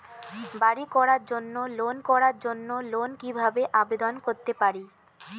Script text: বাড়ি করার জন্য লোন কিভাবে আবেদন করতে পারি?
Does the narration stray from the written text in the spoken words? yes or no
yes